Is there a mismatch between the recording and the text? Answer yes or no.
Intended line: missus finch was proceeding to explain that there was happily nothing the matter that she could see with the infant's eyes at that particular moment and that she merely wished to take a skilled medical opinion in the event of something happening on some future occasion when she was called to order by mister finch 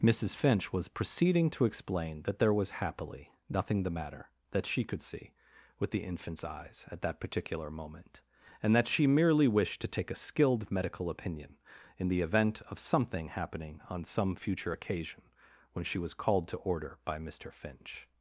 no